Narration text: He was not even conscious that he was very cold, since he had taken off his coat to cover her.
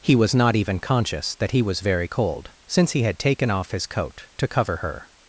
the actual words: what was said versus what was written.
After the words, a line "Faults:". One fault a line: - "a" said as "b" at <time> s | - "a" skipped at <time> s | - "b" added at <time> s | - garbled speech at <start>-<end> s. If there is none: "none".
He was not even conscious that he was very cold, since he had taken off his coat to cover her.
Faults:
none